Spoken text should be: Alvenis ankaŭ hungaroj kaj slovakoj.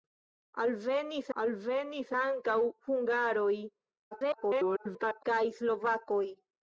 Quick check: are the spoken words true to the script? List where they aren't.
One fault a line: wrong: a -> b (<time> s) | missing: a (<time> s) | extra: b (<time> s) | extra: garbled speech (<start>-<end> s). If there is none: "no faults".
extra: alvenis (1.4 s)
extra: garbled speech (4.1-5.2 s)